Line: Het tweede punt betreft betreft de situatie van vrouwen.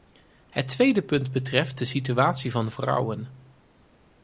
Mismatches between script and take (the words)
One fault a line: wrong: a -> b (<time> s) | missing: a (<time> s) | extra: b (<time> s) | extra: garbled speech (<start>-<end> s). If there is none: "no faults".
missing: betreft (1.8 s)